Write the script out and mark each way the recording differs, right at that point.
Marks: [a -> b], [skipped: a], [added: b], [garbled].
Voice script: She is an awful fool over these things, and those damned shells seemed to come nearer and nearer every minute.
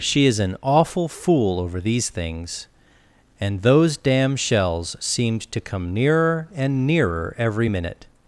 She is an awful fool over these things, and those [damned -> damn] shells seemed to come nearer and nearer every minute.